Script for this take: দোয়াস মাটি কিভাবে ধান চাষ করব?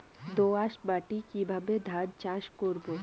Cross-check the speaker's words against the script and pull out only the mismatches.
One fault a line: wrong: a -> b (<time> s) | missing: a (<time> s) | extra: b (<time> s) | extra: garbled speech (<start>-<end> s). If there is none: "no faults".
no faults